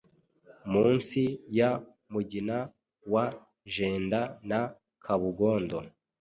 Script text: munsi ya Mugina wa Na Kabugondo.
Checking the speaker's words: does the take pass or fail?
fail